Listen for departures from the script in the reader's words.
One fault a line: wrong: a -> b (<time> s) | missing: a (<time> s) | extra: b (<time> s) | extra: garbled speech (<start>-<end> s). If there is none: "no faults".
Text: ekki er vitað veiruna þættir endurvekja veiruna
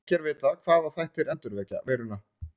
wrong: veiruna -> hvaða (0.7 s)